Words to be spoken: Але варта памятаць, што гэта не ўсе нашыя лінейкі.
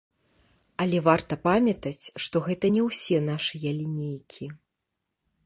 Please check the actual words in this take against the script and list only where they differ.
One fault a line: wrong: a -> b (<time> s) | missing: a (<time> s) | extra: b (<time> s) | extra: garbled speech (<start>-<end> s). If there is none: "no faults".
no faults